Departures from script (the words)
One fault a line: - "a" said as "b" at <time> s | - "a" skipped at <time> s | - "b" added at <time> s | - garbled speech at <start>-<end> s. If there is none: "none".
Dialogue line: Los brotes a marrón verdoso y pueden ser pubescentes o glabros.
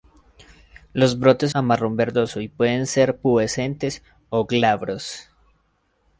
none